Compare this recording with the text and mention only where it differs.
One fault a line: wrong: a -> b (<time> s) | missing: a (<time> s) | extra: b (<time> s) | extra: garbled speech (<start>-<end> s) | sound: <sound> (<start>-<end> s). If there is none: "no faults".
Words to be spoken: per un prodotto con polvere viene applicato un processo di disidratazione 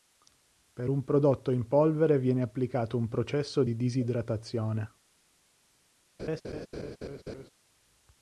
wrong: con -> in (1.5 s)
sound: laugh (6.2-7.5 s)